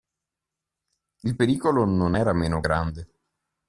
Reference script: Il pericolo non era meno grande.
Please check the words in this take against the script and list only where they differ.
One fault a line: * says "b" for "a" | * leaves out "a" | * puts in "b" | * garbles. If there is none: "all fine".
all fine